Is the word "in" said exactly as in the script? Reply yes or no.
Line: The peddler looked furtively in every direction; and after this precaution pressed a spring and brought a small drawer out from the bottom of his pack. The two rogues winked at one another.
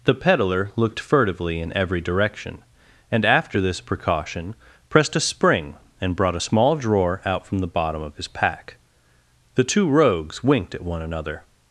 yes